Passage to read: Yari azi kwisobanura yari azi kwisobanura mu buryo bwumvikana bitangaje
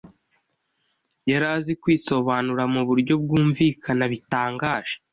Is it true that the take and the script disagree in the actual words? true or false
true